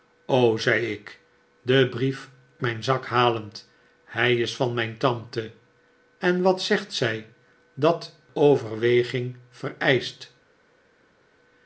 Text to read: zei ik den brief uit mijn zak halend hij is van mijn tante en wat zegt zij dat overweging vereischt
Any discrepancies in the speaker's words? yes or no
yes